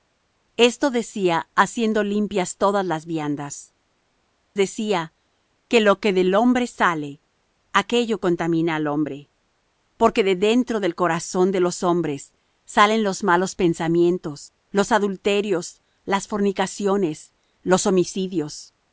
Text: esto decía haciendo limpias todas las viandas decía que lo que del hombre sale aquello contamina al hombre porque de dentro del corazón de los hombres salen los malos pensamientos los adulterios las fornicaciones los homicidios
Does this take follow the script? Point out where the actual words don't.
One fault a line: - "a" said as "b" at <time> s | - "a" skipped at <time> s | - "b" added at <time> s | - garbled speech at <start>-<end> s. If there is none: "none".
none